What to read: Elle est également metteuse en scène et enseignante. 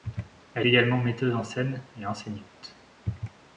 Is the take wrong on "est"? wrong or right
wrong